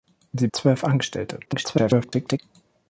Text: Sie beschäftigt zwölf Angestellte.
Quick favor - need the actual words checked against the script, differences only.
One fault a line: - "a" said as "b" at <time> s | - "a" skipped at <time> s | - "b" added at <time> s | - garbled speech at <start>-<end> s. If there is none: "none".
- "beschäftigt" skipped at 0.5 s
- garbled speech at 1.5-2.4 s